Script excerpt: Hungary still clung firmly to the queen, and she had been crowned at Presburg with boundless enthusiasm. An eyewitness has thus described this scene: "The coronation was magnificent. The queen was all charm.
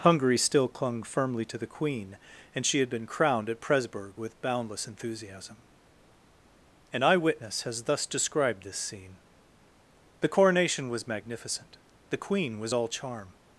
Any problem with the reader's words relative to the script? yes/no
no